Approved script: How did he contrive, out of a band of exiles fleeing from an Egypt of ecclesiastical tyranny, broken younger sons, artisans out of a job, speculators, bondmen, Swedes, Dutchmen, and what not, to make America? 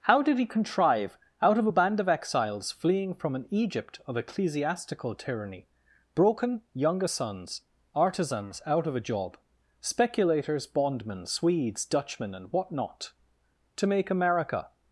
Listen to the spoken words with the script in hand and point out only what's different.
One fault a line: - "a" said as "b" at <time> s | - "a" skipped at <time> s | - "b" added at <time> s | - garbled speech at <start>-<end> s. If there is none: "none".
none